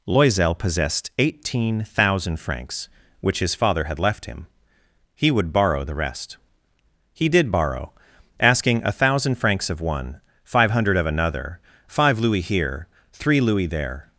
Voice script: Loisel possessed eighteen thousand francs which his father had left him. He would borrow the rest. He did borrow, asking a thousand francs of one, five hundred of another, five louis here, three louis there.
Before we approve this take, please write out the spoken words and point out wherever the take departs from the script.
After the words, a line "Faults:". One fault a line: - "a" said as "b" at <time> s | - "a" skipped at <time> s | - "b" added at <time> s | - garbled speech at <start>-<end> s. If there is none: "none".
Loisel possessed eighteen thousand francs which his father had left him. He would borrow the rest. He did borrow, asking a thousand francs of one, five hundred of another, five louis here, three louis there.
Faults:
none